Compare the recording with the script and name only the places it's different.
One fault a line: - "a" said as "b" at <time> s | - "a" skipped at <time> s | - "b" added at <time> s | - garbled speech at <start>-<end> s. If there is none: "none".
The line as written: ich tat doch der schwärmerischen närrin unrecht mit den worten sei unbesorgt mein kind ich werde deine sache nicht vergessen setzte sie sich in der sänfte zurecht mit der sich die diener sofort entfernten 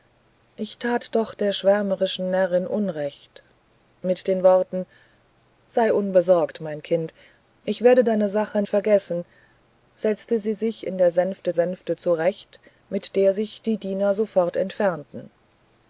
- "nicht" skipped at 8.6 s
- "sänfte" added at 11.5 s